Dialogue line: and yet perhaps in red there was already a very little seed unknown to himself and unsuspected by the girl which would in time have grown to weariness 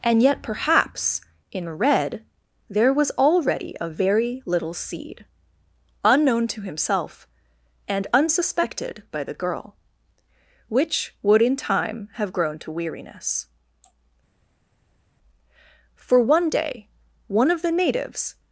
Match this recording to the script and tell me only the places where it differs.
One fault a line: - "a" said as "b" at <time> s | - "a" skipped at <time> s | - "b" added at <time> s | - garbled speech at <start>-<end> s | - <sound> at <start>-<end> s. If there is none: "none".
- "for one day one of the natives" added at 16.0 s